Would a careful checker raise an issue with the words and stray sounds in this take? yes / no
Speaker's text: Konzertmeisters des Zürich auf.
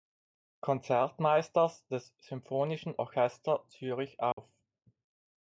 yes